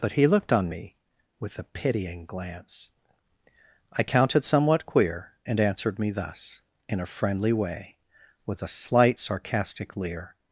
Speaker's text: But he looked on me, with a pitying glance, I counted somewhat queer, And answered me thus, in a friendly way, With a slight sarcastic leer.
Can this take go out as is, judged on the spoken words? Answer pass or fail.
pass